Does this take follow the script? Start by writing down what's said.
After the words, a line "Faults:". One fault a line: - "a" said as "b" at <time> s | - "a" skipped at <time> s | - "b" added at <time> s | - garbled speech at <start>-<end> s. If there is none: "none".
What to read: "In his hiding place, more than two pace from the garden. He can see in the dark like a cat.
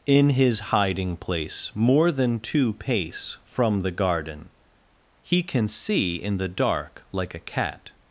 "In his hiding place, more than two pace from the garden. He can see in the dark like a cat.
Faults:
none